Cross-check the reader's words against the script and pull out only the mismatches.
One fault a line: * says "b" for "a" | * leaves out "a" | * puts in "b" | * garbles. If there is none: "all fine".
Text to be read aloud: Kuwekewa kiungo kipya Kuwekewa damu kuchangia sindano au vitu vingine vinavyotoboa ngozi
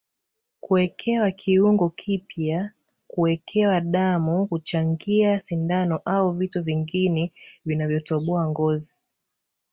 all fine